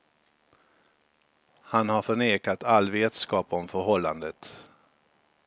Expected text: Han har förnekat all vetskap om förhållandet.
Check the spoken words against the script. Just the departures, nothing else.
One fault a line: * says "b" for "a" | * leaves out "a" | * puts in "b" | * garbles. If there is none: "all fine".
all fine